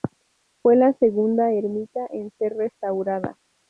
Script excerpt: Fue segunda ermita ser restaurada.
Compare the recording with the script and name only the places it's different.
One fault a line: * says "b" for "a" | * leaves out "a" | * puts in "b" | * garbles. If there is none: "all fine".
* puts in "la"
* puts in "en"